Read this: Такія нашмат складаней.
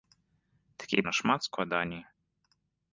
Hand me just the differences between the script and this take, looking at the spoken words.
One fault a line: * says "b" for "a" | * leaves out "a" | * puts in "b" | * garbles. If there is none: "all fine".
all fine